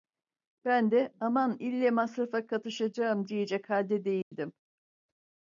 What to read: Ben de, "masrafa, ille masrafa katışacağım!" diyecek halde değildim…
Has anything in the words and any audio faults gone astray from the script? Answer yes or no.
yes